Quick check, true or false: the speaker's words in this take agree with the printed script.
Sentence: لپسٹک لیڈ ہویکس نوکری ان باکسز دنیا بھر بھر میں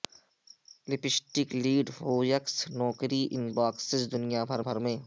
true